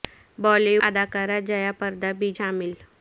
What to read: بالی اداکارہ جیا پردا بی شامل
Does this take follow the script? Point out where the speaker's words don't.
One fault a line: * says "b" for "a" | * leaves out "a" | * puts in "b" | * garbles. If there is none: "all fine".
all fine